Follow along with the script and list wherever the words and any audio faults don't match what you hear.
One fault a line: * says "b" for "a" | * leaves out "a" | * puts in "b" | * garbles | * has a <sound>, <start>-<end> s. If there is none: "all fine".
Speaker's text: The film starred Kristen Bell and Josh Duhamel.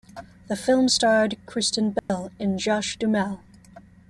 * has a dropout, 2.0-2.1 s